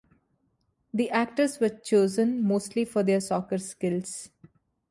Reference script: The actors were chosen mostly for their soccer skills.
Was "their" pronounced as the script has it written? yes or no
yes